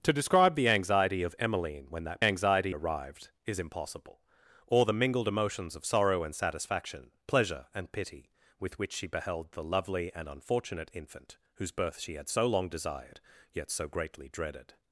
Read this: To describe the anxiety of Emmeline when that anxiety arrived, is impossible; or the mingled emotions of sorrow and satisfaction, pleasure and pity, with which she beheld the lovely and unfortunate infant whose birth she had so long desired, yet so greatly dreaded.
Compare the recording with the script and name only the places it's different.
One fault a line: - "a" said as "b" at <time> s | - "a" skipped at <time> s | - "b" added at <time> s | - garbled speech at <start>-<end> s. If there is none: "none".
none